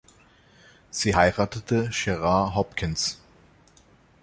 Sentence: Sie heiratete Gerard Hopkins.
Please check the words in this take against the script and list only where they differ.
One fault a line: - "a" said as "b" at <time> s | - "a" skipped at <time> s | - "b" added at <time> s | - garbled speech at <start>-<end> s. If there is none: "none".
none